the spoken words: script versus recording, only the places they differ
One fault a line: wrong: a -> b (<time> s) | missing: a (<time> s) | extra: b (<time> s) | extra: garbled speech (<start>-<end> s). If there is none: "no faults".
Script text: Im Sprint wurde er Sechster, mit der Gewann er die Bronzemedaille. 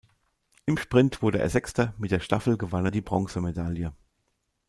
extra: Staffel (2.2 s)